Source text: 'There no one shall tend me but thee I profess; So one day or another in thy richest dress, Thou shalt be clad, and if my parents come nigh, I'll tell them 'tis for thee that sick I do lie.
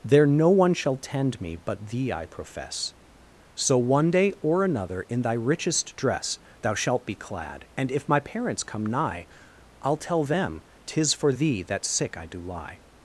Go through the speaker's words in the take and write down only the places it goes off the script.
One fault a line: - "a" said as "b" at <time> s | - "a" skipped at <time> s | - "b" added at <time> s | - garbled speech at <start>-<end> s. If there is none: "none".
none